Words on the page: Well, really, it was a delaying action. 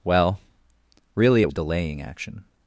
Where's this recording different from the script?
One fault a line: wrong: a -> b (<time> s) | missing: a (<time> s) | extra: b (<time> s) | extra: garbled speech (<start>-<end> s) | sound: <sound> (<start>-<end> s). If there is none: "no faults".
missing: was (1.5 s)